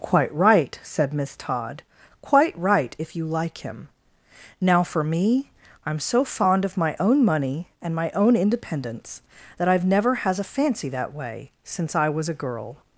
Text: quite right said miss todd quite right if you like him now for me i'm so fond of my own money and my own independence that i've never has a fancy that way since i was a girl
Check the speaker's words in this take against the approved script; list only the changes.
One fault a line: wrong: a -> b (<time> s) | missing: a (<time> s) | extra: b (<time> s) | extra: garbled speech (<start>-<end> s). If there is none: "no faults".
no faults